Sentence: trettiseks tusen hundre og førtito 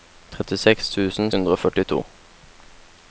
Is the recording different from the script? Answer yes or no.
no